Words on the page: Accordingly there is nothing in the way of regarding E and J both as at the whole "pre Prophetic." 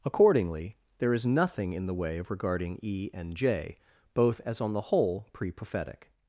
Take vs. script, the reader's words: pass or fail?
fail